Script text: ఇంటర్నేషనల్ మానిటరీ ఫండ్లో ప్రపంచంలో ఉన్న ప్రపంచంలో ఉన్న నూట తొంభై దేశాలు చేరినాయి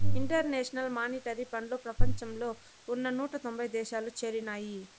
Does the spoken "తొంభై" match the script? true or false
true